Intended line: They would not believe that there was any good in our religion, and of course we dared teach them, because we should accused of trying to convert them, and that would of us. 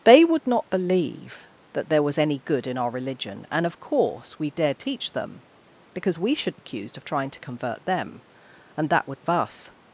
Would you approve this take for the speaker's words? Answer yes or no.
yes